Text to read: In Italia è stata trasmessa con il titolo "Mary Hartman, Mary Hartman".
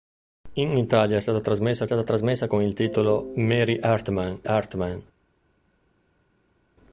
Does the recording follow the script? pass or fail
fail